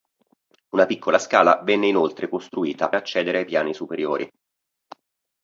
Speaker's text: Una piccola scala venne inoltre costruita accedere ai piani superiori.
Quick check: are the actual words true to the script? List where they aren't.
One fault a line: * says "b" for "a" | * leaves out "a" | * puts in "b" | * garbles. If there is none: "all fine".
all fine